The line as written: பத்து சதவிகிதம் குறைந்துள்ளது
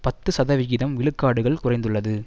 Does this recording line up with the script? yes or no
no